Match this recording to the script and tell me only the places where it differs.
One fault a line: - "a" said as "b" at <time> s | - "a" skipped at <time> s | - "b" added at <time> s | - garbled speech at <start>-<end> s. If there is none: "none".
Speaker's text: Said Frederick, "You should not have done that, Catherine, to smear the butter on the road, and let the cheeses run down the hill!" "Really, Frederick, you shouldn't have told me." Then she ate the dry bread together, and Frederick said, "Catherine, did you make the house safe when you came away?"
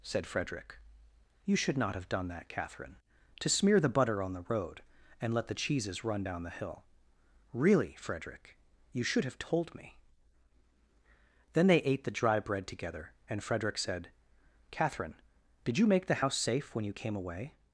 - "shouldn't" said as "should" at 9.0 s
- "she" said as "they" at 11.7 s